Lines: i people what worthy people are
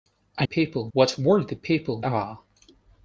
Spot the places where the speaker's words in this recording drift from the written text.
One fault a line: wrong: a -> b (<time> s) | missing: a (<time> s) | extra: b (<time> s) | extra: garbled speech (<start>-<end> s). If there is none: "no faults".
no faults